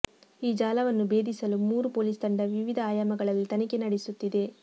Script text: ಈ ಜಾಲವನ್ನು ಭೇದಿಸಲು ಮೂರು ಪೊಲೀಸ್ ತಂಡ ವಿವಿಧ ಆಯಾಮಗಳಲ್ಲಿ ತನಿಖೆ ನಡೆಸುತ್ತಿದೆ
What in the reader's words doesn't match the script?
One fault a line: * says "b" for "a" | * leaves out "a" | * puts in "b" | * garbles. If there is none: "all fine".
all fine